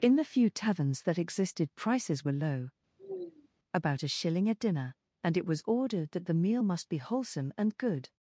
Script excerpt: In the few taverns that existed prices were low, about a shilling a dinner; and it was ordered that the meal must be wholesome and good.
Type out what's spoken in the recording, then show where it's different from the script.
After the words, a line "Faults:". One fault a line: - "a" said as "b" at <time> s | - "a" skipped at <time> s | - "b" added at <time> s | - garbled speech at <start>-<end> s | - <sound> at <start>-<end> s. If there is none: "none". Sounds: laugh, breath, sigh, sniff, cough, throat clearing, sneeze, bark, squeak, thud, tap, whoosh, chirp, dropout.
In the few taverns that existed prices were low, about a shilling a dinner; and it was ordered that the meal must be wholesome and good.
Faults:
- sigh at 3.0-3.5 s